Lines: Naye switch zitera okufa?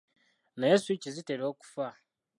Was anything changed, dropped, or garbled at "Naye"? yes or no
no